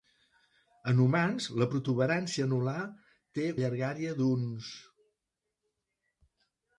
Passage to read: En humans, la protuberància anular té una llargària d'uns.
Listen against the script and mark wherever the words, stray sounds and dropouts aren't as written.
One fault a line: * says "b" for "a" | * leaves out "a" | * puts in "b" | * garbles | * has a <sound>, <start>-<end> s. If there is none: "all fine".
* leaves out "una"